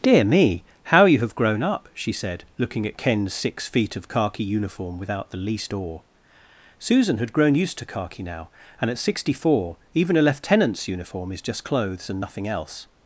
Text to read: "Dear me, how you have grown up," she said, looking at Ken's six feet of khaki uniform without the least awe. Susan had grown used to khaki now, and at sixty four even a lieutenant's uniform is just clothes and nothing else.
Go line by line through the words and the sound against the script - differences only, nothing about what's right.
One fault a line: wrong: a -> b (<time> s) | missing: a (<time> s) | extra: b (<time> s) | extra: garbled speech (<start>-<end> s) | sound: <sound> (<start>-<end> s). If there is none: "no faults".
no faults